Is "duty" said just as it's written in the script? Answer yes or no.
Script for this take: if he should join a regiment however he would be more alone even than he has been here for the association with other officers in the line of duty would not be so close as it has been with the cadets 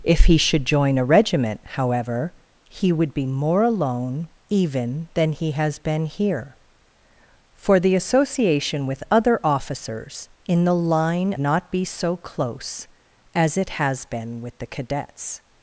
no